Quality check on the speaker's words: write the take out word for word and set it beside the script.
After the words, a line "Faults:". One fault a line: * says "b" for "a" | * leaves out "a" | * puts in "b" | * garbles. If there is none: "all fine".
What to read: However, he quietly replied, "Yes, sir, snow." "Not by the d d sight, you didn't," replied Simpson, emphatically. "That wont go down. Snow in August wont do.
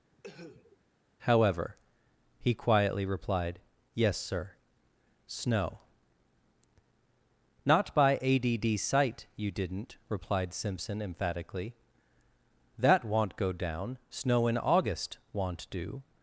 However, he quietly replied, "Yes, sir, snow." "Not by a d d sight, you didn't," replied Simpson, emphatically. "That wont go down. Snow in August wont do.
Faults:
* says "a" for "the"